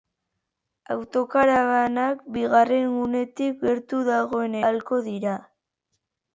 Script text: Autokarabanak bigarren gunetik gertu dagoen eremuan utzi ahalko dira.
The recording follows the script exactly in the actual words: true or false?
false